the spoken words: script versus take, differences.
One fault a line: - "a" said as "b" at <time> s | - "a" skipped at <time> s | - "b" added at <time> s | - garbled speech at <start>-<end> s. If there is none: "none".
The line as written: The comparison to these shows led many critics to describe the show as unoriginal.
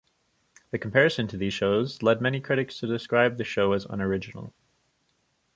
none